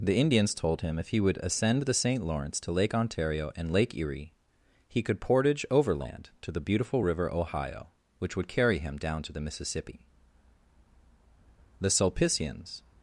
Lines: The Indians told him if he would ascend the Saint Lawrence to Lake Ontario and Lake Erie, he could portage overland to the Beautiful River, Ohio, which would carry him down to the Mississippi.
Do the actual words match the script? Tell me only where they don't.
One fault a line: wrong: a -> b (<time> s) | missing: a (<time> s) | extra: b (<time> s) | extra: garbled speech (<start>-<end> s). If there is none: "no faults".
extra: The Sulpicians (11.8 s)